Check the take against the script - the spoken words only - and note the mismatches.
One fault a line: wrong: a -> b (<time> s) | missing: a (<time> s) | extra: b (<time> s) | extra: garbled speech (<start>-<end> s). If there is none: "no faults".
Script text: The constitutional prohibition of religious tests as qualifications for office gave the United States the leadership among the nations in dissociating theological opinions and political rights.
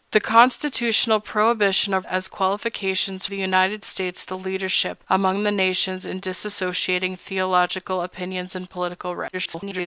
missing: religious tests (2.1 s)
missing: for office gave (3.2 s)
extra: garbled speech (9.3-9.9 s)